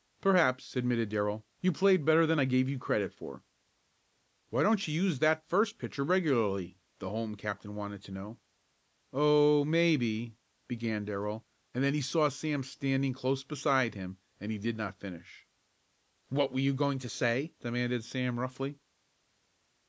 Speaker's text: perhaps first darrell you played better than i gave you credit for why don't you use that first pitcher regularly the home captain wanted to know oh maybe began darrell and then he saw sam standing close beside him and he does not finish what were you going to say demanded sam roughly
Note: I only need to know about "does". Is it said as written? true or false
false